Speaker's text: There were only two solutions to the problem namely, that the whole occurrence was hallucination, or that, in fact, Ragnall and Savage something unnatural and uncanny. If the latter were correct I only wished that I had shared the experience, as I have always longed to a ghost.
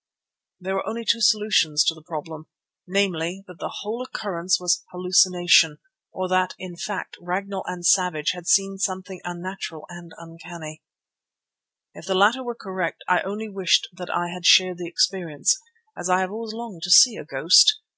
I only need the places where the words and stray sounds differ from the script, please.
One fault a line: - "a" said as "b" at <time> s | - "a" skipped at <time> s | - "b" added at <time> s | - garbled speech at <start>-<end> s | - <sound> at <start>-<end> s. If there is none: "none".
- "had seen" added at 8.3 s
- "see" added at 16.9 s